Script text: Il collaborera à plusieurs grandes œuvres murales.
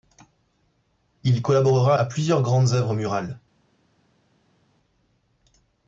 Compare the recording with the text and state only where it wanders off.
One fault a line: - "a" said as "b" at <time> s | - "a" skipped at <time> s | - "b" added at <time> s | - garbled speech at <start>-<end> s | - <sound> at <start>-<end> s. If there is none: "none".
none